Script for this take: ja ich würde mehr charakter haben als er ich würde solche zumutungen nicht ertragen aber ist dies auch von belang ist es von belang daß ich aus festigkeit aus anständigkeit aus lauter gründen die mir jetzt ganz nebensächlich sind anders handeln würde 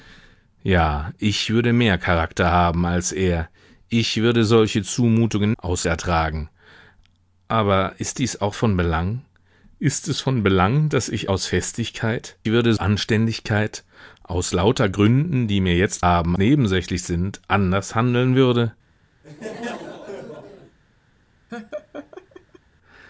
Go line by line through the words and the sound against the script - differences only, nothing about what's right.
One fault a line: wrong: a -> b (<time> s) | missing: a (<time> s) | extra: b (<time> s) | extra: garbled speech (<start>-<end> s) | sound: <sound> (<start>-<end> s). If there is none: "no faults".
wrong: nicht -> aus (5.6 s)
wrong: aus -> würde (12.5 s)
wrong: ganz -> haben (16.0 s)
sound: laugh (19.2-20.8 s)
sound: laugh (21.5-22.6 s)